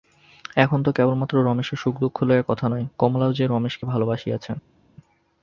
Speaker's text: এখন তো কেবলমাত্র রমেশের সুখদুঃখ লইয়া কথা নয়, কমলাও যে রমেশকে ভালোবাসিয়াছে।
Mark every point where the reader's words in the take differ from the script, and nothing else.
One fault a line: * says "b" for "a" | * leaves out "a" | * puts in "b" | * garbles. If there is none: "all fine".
all fine